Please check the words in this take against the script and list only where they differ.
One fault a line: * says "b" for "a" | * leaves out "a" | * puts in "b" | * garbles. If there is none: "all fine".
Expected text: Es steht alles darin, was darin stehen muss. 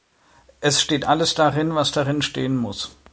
all fine